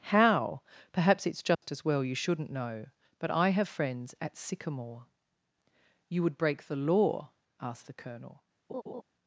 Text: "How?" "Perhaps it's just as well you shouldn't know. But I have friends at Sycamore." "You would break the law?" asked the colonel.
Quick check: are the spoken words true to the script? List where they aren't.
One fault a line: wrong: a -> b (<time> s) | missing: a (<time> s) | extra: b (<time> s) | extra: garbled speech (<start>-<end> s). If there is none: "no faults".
no faults